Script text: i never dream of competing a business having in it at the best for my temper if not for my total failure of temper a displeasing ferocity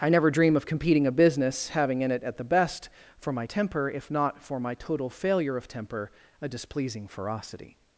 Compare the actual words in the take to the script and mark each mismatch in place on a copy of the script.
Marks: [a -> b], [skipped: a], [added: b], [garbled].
i never dream of competing a business having in it at the best for my temper if not for my total failure of temper a displeasing ferocity